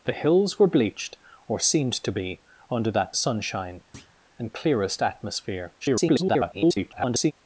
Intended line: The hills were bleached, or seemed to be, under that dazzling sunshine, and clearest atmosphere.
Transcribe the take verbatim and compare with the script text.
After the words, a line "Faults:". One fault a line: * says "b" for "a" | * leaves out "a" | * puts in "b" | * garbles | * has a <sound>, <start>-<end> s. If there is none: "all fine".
The hills were bleached, or seemed to be, under that sunshine, and clearest atmosphere. [garbled]
Faults:
* leaves out "dazzling"
* has a thud, 3.9-4.2 s
* garbles